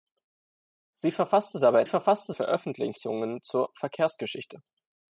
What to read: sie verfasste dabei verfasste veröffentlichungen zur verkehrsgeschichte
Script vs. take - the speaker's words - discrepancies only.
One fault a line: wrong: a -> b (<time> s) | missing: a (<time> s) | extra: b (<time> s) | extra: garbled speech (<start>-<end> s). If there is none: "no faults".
no faults